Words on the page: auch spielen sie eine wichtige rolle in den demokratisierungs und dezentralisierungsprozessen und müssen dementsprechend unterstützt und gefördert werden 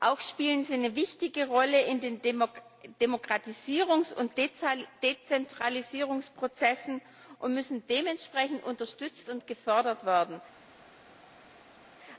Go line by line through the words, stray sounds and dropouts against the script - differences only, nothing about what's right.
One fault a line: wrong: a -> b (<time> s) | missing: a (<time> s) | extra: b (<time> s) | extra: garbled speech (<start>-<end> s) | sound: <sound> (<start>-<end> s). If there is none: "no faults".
no faults